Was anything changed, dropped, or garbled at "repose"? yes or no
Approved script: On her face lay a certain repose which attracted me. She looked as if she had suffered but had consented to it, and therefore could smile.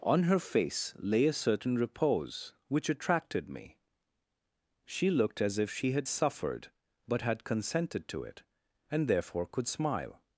no